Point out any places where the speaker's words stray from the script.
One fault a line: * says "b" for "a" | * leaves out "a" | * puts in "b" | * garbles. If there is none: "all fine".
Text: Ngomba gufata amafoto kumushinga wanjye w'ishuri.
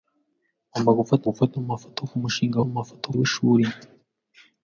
* puts in "gufata"
* says "amafoto" for "wanjye"